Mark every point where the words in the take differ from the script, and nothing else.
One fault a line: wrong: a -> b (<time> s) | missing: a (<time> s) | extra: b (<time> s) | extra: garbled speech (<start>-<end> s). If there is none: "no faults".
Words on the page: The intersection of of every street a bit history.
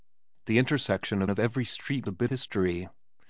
no faults